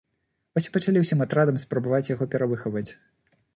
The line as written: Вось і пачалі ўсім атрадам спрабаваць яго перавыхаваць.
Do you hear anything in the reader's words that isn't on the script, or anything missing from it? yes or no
no